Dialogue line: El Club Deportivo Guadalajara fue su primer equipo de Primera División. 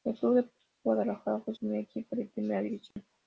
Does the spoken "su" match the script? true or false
false